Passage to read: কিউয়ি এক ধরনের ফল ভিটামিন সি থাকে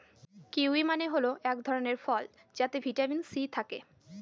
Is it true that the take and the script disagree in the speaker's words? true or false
true